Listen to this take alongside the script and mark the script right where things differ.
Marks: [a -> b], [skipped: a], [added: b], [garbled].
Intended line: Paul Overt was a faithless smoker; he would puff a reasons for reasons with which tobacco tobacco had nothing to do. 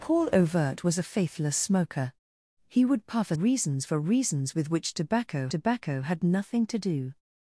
Paul Overt was a faithless smoker; he would puff a reasons for reasons with which tobacco tobacco had nothing to do.